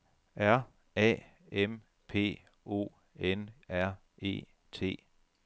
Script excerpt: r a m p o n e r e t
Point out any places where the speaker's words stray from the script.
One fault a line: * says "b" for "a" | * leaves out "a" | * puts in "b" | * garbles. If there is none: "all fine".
* leaves out "e"